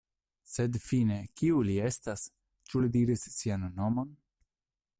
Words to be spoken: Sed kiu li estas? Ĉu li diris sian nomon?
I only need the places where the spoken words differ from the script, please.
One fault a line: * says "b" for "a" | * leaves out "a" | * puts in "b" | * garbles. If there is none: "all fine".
* puts in "fine"